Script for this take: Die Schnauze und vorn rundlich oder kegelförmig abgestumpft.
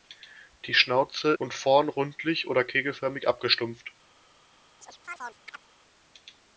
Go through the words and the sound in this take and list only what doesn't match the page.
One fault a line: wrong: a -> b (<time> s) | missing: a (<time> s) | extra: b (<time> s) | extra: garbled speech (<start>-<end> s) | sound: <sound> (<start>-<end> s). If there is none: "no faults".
sound: chirp (4.8-5.6 s)